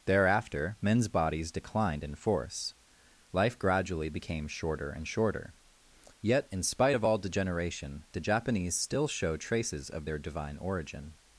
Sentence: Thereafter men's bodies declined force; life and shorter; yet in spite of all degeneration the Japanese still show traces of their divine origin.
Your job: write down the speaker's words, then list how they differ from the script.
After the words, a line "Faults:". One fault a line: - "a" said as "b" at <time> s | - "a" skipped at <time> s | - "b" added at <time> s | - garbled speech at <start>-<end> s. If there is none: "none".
Thereafter men's bodies declined in force; life gradually became shorter and shorter; yet in spite of all degeneration the Japanese still show traces of their divine origin.
Faults:
- "in" added at 2.0 s
- "gradually became shorter" added at 3.6 s